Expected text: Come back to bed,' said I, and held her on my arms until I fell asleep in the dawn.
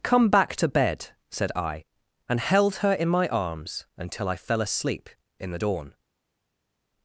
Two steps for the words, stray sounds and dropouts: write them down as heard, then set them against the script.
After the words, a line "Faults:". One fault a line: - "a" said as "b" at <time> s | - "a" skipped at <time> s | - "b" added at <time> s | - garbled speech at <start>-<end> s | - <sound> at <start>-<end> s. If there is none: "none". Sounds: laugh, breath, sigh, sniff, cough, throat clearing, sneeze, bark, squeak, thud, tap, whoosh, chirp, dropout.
Come back to bed,' said I, and held her in my arms until I fell asleep in the dawn.
Faults:
- "on" said as "in" at 2.9 s